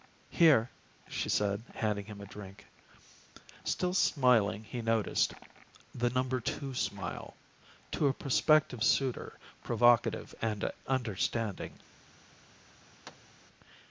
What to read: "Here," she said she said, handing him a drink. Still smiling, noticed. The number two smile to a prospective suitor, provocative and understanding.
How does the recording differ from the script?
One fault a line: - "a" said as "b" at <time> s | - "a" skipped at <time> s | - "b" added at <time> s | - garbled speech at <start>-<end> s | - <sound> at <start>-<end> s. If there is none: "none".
- "she said" skipped at 1.6 s
- "he" added at 4.6 s
- thud at 13.0-13.4 s